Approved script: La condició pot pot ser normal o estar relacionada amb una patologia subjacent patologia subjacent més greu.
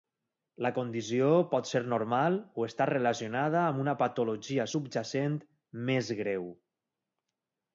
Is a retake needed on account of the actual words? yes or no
yes